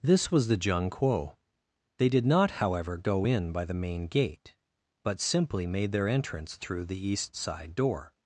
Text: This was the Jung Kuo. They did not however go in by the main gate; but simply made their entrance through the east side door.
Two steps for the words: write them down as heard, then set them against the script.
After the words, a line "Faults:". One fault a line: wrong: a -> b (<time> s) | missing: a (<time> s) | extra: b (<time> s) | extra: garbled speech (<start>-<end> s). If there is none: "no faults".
This was the Jung Kuo. They did not however go in by the main gate; but simply made their entrance through the east side door.
Faults:
no faults